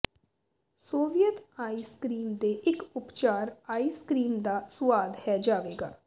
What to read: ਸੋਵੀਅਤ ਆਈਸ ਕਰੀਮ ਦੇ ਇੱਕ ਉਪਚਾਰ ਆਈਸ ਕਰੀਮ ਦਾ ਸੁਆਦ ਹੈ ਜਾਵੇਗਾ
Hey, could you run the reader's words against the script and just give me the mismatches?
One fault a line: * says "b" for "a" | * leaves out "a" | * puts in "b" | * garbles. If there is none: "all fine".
all fine